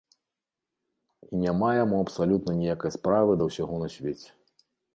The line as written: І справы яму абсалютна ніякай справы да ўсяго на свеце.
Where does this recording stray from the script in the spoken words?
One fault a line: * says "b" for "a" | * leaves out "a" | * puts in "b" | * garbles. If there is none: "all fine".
* says "няма" for "справы"